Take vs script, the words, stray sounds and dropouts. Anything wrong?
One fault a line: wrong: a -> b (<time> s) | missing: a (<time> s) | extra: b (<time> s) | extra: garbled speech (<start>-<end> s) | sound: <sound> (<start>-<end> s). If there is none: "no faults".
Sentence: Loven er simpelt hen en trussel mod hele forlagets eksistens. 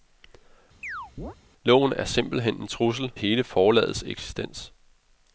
sound: chirp (0.8-1.4 s)
missing: mod (3.1 s)